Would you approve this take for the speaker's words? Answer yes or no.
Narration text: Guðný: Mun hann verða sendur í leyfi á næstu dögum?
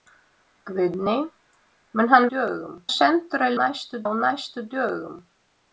no